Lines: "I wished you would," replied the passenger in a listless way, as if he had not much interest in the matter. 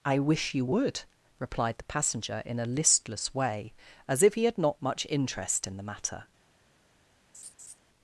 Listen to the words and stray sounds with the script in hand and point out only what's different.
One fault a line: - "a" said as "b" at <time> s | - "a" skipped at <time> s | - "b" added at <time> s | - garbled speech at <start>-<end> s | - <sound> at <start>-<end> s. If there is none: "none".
- "wished" said as "wish" at 0.2 s
- laugh at 7.3-7.8 s